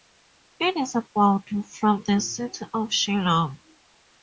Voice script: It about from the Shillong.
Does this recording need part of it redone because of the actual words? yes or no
yes